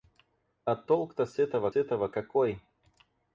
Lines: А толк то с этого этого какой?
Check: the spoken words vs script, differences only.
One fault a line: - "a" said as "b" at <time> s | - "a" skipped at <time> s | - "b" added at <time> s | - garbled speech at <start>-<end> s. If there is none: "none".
none